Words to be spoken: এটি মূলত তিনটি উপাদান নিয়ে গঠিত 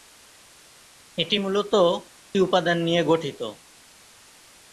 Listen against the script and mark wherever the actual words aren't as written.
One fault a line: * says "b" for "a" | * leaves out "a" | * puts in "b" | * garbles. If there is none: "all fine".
* leaves out "তিনটি"